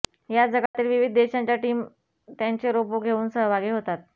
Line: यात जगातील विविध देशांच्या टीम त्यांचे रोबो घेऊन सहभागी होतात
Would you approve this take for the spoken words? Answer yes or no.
yes